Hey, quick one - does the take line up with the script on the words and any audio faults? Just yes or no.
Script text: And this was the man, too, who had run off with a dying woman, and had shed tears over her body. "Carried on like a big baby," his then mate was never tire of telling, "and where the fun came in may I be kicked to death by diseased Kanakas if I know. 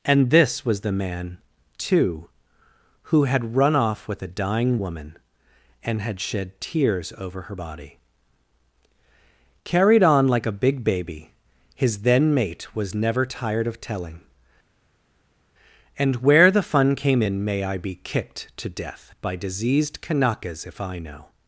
no